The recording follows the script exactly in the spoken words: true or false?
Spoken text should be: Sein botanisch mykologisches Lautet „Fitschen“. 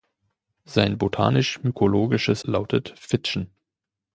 true